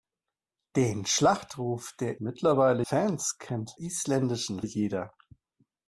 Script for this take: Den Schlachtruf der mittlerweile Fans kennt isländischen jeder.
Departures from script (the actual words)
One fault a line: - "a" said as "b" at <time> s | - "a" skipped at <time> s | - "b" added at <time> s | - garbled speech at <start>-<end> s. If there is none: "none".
none